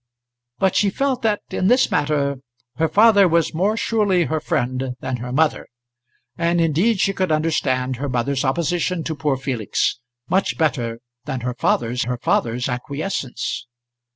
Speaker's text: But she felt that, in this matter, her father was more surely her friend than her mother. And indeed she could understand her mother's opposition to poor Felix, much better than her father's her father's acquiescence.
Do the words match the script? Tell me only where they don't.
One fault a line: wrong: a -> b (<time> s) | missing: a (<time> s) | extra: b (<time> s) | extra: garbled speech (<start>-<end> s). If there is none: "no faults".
no faults